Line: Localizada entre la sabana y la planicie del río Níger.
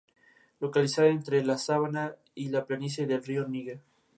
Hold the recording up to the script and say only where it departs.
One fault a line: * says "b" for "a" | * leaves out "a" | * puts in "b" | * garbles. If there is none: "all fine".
all fine